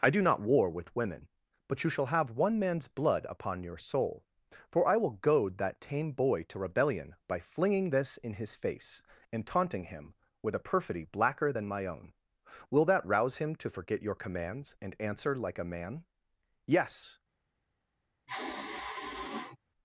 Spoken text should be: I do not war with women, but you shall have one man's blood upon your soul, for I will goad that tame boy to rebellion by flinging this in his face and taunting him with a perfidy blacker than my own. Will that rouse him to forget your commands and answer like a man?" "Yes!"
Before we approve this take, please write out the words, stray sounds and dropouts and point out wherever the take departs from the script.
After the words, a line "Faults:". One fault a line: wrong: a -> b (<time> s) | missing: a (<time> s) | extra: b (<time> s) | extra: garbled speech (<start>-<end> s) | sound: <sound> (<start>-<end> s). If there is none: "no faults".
I do not war with women, but you shall have one man's blood upon your soul, for I will goad that tame boy to rebellion by flinging this in his face and taunting him with a perfidy blacker than my own. Will that rouse him to forget your commands and answer like a man?" "Yes!"
Faults:
sound: sigh (18.3-19.6 s)